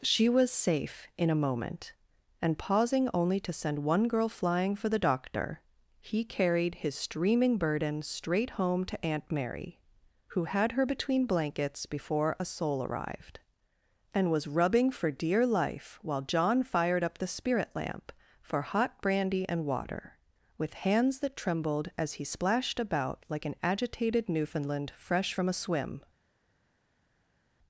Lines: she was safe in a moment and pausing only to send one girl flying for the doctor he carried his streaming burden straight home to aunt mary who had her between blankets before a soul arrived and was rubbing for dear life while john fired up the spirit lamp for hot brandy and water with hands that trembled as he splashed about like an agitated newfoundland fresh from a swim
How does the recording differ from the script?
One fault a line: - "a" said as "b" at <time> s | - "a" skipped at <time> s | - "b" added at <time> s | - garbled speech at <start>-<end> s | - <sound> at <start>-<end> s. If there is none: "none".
none